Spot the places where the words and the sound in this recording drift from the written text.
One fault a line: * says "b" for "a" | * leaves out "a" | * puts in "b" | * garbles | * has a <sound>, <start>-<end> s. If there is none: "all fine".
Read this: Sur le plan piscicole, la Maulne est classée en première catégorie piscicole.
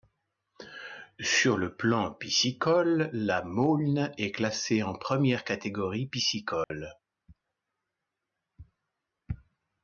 * has a dropout, 6.6-6.7 s